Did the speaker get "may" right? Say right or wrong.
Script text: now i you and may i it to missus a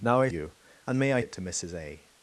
right